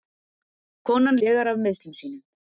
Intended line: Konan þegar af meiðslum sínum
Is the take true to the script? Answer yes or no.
yes